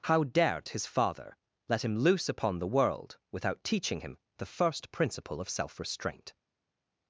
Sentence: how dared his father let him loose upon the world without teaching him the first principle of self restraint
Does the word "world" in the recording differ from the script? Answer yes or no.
no